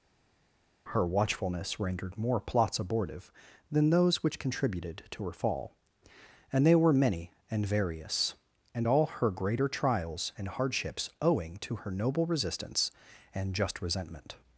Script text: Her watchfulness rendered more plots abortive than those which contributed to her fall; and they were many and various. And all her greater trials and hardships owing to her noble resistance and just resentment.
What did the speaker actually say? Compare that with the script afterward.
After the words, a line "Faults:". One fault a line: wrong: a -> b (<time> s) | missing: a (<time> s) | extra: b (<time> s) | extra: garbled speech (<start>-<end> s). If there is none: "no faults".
Her watchfulness rendered more plots abortive than those which contributed to her fall; and they were many and various. And all her greater trials and hardships owing to her noble resistance and just resentment.
Faults:
no faults